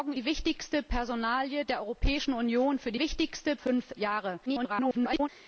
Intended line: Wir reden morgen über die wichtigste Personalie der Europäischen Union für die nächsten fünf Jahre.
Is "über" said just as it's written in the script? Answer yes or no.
no